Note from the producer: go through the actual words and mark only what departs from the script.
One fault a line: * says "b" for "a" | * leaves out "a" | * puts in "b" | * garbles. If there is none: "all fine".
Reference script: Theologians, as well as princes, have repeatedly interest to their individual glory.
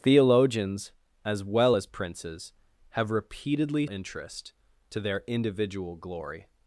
all fine